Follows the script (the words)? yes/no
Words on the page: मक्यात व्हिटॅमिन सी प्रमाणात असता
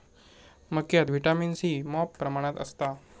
no